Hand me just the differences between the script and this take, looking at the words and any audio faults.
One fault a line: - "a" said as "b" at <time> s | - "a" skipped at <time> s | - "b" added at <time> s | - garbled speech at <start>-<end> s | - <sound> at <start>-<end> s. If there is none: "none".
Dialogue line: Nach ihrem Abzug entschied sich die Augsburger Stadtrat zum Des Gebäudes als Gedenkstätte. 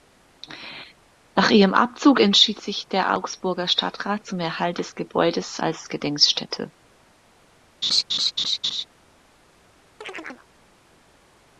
- "die" said as "der" at 2.9 s
- "Erhalt" added at 4.4 s
- laugh at 7.8-8.8 s
- chirp at 10.0-10.5 s